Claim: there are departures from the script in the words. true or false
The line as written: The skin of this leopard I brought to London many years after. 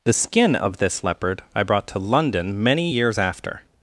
false